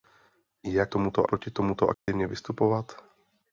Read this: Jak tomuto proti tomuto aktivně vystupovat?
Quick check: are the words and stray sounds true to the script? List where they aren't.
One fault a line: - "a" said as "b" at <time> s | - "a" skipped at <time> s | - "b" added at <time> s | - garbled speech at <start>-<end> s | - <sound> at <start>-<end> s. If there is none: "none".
- dropout at 1.9-2.1 s